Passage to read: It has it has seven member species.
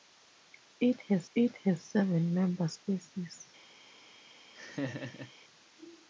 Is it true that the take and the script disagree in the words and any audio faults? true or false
true